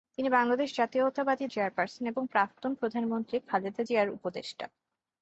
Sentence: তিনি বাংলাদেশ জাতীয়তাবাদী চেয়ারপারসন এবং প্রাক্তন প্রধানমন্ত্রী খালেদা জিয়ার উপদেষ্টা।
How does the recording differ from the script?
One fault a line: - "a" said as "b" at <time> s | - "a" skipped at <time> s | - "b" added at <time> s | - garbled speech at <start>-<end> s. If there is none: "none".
none